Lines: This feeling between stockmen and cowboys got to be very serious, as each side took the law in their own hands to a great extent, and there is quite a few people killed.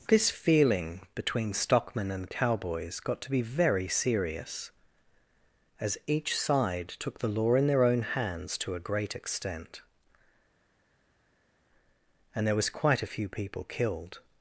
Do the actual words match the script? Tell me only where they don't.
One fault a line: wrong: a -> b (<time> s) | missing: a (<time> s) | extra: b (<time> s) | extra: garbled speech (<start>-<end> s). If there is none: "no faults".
wrong: is -> was (12.6 s)